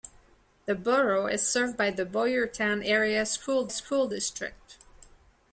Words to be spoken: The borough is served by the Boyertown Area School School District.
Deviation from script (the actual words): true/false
false